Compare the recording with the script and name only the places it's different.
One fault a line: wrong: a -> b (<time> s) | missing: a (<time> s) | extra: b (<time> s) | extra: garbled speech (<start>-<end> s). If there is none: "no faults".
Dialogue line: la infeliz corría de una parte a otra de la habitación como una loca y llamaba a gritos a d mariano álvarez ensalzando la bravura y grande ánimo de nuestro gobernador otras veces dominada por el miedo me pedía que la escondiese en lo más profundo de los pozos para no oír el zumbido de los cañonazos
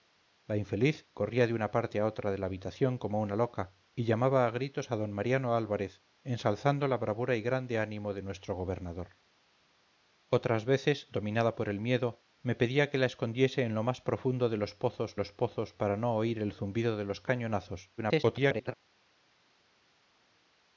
extra: los pozos (15.1 s)
extra: garbled speech (18.0-18.7 s)